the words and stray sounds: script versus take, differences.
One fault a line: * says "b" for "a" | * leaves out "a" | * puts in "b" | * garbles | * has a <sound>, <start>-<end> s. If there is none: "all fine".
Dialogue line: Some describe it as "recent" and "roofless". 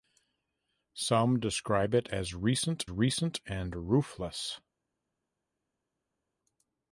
* puts in "recent"